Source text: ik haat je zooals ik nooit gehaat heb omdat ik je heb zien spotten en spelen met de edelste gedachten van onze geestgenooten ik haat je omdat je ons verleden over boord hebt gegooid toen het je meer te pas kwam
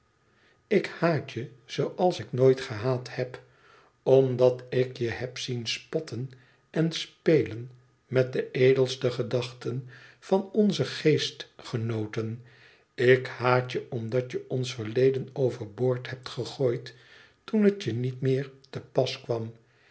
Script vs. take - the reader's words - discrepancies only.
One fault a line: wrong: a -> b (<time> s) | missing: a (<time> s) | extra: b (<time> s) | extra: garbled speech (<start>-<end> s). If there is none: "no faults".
extra: niet (17.9 s)